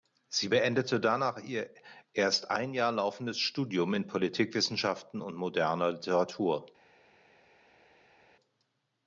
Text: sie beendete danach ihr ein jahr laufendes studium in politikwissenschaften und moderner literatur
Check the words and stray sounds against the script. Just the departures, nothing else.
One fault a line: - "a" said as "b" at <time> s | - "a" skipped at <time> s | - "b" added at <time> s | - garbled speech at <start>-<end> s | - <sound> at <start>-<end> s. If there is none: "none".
- "erst" added at 2.1 s